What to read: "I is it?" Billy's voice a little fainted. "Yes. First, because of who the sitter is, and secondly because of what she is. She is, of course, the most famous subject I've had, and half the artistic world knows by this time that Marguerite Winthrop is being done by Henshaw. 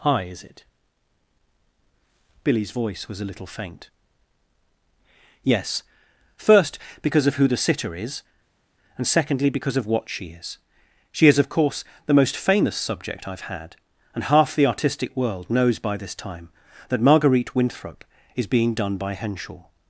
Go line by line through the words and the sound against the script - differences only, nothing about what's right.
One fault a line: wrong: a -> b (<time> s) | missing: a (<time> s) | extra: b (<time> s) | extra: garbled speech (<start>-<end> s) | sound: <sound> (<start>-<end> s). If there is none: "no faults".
extra: was (3.1 s)
wrong: fainted -> faint (3.5 s)